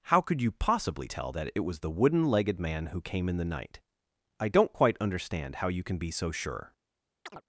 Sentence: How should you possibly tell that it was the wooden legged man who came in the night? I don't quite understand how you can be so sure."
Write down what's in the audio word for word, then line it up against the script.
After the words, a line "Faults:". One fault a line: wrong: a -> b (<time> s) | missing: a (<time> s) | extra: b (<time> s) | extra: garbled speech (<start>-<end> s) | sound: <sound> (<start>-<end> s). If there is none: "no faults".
How could you possibly tell that it was the wooden legged man who came in the night? I don't quite understand how you can be so sure."
Faults:
wrong: should -> could (0.2 s)
sound: chirp (7.3-7.4 s)